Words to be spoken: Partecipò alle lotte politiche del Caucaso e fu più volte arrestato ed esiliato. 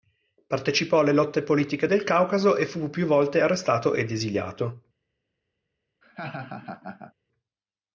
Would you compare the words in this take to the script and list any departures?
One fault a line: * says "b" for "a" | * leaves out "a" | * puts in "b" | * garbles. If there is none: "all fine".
all fine